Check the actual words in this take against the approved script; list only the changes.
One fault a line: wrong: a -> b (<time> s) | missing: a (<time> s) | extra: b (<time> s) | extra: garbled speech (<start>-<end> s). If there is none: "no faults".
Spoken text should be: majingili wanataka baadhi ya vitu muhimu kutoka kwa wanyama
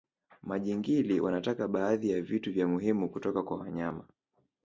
extra: vya (2.5 s)